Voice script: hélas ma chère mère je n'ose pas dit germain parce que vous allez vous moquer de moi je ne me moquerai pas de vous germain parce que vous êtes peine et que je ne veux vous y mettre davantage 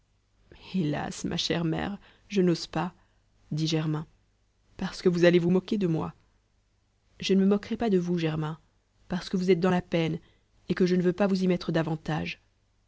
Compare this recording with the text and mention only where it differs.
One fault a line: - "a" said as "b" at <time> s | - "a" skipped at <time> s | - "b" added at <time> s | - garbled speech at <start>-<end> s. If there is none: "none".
- "dans la" added at 9.6 s
- "pas" added at 11.1 s